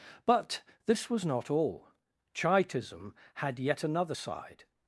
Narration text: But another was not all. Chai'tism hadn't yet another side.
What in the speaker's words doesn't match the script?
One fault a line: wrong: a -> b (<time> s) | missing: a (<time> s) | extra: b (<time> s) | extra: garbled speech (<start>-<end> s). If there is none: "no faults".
wrong: another -> this (0.8 s)
wrong: hadn't -> had (3.4 s)